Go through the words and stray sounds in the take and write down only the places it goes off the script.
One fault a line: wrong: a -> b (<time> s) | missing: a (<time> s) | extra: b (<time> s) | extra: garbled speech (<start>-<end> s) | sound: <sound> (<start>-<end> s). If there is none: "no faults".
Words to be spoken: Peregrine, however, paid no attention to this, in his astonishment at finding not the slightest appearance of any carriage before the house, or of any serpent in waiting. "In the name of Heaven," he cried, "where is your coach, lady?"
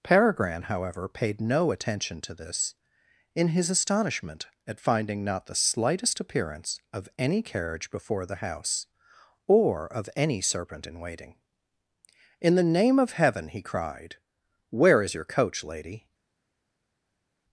no faults